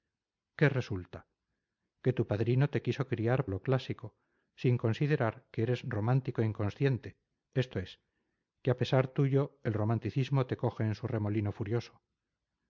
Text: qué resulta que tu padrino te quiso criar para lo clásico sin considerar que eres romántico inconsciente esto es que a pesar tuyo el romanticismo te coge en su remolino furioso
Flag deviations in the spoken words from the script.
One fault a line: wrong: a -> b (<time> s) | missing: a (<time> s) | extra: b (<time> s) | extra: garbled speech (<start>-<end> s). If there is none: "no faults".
missing: para (3.5 s)